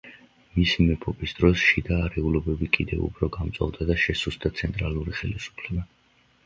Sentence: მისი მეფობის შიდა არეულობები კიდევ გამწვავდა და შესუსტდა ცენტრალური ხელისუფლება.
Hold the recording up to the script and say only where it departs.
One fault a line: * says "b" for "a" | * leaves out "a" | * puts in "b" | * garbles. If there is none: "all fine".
* puts in "დროს"
* puts in "უფრო"